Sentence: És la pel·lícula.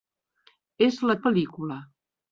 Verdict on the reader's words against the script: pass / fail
pass